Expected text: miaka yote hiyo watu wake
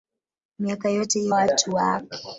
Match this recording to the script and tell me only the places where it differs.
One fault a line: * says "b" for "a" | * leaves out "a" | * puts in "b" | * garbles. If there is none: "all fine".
all fine